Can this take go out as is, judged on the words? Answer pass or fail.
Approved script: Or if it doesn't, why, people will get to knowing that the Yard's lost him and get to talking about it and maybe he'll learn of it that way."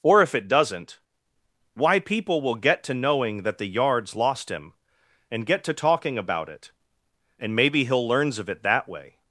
fail